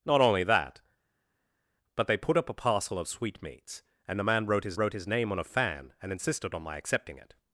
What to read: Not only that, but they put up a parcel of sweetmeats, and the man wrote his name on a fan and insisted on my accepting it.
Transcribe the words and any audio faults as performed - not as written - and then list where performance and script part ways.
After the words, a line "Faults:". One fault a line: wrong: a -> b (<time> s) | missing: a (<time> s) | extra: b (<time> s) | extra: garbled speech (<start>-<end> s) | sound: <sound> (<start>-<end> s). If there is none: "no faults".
Not only that, but they put up a parcel of sweetmeats, and the man wrote his wrote his name on a fan and insisted on my accepting it.
Faults:
extra: wrote his (4.8 s)